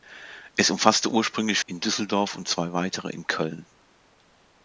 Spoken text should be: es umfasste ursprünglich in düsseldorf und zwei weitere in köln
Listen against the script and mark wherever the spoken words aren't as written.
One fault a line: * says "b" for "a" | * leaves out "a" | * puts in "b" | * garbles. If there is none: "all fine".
all fine